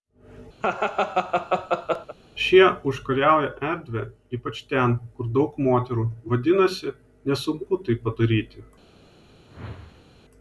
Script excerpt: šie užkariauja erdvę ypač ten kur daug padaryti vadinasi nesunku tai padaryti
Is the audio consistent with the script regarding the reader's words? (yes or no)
no